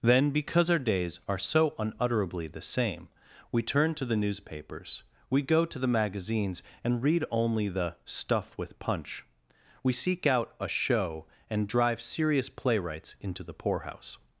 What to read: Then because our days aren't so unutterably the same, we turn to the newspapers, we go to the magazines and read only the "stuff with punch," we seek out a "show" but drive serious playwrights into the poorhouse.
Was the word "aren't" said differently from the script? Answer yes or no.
yes